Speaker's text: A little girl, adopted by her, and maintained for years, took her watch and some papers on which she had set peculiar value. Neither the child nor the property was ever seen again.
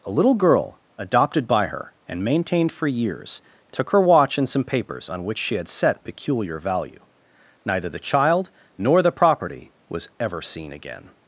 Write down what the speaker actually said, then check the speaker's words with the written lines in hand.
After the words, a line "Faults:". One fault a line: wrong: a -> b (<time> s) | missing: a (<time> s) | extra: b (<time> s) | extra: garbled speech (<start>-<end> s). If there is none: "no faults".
A little girl, adopted by her, and maintained for years, took her watch and some papers on which she had set peculiar value. Neither the child nor the property was ever seen again.
Faults:
no faults